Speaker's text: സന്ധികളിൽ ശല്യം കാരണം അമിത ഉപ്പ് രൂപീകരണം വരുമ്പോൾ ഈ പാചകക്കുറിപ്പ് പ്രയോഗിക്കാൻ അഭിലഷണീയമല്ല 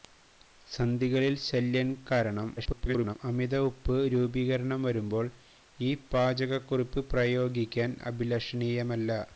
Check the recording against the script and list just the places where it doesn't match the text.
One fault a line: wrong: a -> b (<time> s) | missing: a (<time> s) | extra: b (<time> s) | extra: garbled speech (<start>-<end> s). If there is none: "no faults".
extra: garbled speech (2.6-3.2 s)